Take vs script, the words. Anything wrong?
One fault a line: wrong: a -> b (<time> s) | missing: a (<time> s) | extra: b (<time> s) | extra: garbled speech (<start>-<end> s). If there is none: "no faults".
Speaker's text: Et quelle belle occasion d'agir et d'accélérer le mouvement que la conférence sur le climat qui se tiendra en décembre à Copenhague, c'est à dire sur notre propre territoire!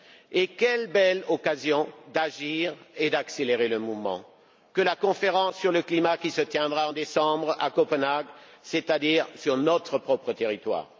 no faults